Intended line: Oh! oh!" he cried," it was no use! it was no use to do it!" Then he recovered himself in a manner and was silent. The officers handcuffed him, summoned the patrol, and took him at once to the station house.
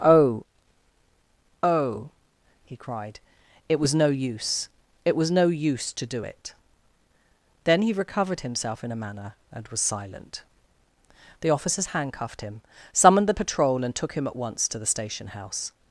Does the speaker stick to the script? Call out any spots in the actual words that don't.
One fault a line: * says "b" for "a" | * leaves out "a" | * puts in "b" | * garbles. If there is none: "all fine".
all fine